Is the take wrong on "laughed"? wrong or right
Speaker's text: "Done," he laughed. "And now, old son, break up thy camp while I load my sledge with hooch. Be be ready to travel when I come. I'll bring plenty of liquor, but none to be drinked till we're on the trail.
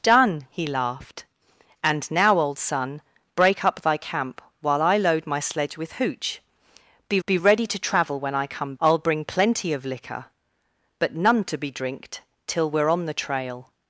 right